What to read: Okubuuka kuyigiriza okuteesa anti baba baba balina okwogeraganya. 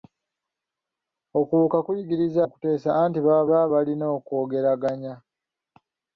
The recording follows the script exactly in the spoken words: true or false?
true